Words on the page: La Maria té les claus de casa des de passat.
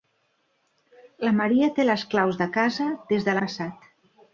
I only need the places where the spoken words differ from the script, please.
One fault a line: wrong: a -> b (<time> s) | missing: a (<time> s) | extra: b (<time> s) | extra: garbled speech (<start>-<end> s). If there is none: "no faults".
no faults